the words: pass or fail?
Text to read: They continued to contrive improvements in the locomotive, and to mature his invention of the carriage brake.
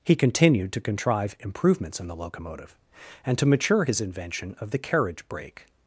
fail